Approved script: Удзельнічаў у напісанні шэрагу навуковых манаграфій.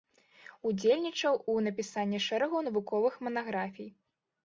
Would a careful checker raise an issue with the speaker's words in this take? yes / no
no